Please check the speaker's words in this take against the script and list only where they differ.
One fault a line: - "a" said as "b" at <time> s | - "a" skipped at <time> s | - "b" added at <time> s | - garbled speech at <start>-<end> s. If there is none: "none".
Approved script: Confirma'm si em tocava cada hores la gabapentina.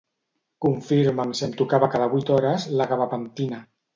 - "vuit" added at 2.1 s